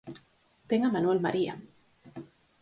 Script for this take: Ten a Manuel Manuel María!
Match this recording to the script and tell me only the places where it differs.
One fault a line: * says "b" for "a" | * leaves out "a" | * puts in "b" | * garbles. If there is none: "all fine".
* leaves out "Manuel"